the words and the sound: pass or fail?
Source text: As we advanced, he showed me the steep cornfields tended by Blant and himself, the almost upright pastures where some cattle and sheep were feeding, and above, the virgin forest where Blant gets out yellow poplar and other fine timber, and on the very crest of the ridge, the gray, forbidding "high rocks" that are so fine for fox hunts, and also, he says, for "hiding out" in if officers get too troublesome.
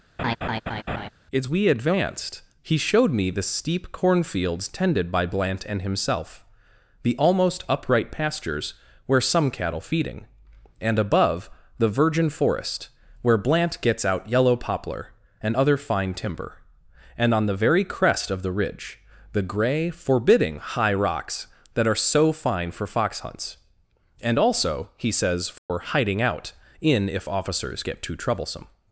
fail